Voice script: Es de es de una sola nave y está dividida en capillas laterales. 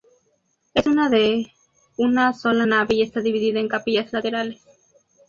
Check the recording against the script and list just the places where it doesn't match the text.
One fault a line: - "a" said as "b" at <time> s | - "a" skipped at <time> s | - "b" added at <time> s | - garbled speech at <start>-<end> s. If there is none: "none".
- "es de" skipped at 1.4 s